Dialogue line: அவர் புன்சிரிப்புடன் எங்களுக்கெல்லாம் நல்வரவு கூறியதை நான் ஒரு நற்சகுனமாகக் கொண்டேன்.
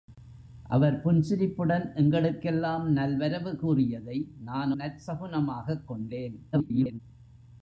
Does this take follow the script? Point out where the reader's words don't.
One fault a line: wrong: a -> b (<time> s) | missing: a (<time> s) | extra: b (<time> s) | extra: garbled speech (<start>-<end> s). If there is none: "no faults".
missing: ஒரு (4.7 s)
extra: garbled speech (6.5-7.0 s)